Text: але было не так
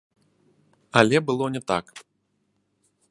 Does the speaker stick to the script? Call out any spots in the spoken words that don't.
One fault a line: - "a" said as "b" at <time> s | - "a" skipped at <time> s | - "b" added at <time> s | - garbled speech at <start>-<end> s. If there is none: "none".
none